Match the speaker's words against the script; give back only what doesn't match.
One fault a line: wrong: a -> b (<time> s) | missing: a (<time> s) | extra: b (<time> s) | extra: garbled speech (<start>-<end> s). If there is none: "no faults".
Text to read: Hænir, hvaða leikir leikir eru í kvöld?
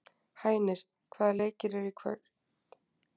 missing: leikir (1.8 s)